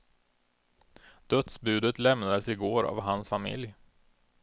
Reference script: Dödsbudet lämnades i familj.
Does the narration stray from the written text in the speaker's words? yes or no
yes